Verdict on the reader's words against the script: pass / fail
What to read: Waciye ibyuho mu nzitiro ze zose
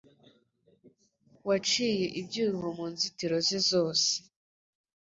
pass